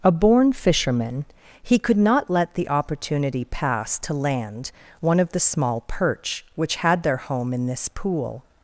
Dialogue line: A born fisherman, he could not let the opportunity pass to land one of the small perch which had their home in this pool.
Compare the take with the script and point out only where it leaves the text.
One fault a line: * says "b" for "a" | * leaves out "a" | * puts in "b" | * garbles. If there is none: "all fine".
all fine